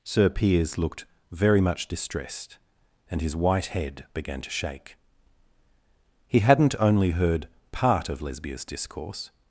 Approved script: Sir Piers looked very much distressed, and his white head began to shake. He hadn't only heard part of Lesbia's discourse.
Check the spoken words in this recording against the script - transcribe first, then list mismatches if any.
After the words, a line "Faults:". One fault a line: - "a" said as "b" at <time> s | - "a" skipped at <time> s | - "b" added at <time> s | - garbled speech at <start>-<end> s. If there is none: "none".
Sir Piers looked very much distressed, and his white head began to shake. He hadn't only heard part of Lesbia's discourse.
Faults:
none